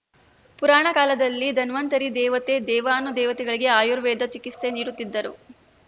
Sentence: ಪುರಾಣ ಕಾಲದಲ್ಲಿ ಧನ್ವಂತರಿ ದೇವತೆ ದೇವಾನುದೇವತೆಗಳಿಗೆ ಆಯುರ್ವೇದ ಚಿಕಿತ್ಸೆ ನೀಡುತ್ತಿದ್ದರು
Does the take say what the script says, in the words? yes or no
yes